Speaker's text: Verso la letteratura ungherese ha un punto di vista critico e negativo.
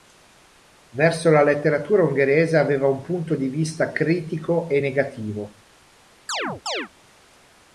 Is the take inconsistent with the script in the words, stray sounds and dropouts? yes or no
yes